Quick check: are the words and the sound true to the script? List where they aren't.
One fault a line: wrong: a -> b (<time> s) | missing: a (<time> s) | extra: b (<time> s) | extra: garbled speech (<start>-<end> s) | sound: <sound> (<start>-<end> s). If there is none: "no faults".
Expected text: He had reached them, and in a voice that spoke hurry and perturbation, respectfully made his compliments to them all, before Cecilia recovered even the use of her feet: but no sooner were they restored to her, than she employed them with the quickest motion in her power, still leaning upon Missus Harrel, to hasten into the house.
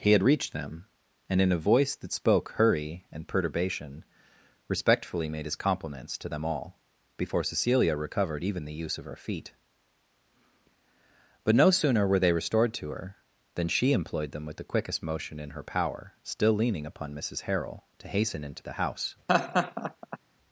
sound: laugh (19.3-20.2 s)